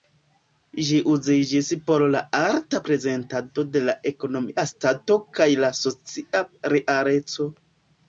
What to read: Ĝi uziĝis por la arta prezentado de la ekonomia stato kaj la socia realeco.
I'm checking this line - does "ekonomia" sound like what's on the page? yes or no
yes